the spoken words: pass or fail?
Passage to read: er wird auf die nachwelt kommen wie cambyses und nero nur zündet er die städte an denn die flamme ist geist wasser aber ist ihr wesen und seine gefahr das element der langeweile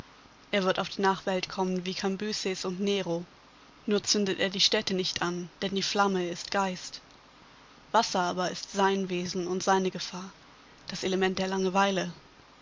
fail